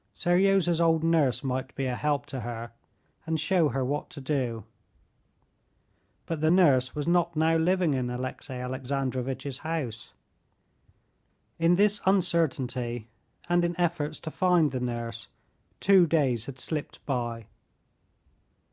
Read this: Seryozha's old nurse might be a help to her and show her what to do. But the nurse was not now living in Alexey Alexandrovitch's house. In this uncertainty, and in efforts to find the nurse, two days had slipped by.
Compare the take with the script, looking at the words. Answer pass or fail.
pass